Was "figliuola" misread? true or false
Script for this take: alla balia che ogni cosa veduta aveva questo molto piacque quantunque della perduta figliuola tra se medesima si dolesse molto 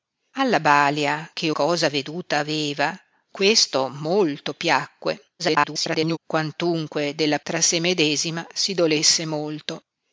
true